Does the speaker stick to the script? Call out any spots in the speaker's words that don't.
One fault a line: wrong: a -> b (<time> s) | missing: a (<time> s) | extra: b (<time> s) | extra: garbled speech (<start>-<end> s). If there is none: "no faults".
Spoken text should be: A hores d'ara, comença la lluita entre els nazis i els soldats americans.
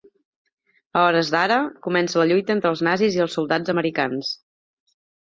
no faults